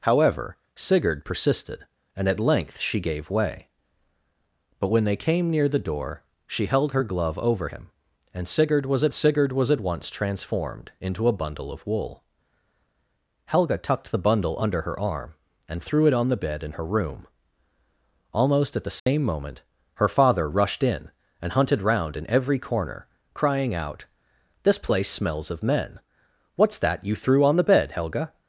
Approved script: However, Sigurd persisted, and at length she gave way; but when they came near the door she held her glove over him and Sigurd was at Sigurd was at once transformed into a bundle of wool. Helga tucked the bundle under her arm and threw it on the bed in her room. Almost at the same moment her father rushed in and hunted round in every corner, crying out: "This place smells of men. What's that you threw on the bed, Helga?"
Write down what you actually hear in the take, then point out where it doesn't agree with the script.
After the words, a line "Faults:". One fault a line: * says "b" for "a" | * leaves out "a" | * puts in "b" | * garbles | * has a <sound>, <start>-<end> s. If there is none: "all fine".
However, Sigurd persisted, and at length she gave way; but when they came near the door she held her glove over him and Sigurd was at Sigurd was at once transformed into a bundle of wool. Helga tucked the bundle under her arm and threw it on the bed in her room. Almost at the same moment her father rushed in and hunted round in every corner, crying out: "This place smells of men. What's that you threw on the bed, Helga?"
Faults:
* has a dropout, 19.0-19.1 s